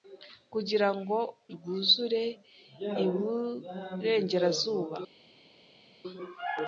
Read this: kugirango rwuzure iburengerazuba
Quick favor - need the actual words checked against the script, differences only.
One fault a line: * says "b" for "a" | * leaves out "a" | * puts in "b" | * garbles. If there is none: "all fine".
all fine